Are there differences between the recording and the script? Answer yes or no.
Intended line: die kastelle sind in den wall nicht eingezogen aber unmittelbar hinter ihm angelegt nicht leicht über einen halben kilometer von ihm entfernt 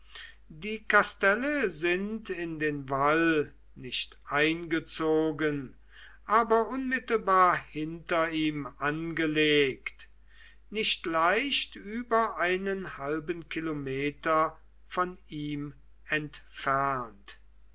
no